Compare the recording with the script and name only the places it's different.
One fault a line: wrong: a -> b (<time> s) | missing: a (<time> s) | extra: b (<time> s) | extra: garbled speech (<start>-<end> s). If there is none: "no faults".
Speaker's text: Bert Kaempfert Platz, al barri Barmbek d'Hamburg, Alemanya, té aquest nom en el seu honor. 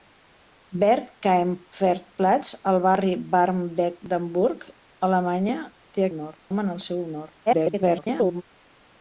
wrong: aquest -> honor (6.2 s)
extra: garbled speech (7.5-8.4 s)